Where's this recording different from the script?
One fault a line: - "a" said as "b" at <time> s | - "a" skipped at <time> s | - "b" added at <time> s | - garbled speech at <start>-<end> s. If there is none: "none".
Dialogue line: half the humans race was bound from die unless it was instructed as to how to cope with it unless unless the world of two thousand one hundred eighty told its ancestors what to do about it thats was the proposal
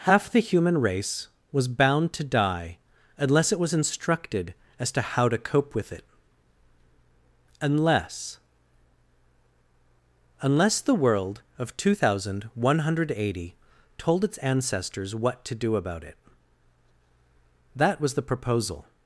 - "humans" said as "human" at 0.4 s
- "from" said as "to" at 2.1 s
- "thats" said as "that" at 17.7 s